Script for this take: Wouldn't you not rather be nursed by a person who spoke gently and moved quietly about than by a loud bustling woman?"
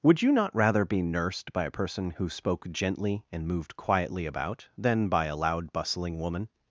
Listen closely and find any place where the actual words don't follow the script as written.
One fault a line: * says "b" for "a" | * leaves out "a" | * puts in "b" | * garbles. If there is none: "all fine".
* says "Would" for "Wouldn't"